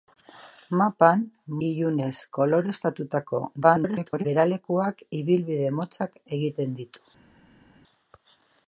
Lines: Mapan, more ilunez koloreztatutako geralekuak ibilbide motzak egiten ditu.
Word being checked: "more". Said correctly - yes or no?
no